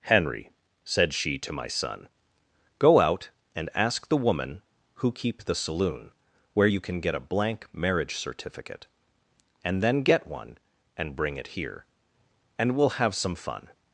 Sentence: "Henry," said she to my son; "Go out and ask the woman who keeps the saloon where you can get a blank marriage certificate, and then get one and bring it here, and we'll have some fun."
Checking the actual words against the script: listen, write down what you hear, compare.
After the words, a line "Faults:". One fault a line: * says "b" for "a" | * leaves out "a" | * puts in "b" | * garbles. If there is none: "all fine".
"Henry," said she to my son; "Go out and ask the woman who keep the saloon where you can get a blank marriage certificate, and then get one and bring it here, and we'll have some fun."
Faults:
* says "keep" for "keeps"